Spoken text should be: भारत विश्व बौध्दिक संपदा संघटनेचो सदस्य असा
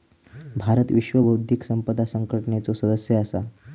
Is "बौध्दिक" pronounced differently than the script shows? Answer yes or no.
no